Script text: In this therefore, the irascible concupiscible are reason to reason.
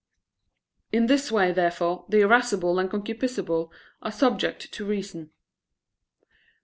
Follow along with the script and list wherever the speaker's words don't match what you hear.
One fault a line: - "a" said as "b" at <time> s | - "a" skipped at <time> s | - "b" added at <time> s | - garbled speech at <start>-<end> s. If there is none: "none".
- "way" added at 1.3 s
- "and" added at 2.8 s
- "reason" said as "subject" at 4.1 s